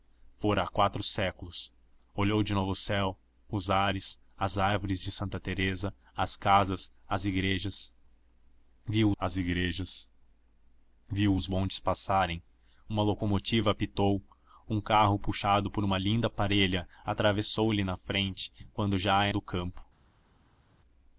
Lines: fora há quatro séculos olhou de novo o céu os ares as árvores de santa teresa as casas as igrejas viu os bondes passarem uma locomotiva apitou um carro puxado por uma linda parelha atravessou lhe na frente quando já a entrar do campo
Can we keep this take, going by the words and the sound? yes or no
no